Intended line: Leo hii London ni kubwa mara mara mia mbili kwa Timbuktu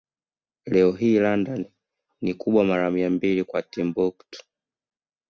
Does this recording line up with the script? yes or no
no